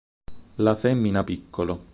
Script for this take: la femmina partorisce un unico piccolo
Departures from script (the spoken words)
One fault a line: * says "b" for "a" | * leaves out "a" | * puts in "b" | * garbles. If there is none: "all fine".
* leaves out "partorisce un unico"